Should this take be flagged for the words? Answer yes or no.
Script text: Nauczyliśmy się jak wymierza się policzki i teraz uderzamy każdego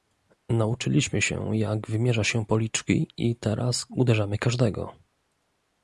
no